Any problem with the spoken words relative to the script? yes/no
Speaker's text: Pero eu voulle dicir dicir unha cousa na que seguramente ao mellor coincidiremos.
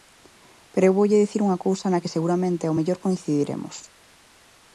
yes